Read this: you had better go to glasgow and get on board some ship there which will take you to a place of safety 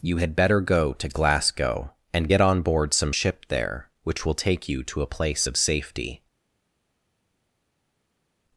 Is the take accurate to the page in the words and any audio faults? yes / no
yes